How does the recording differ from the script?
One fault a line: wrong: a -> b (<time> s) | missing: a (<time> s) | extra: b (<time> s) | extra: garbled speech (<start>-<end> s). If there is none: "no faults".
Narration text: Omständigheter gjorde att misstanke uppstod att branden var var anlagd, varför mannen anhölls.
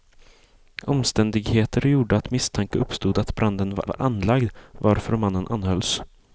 no faults